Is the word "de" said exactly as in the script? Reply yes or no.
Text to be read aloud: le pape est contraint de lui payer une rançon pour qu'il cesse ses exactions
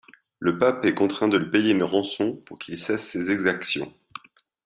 yes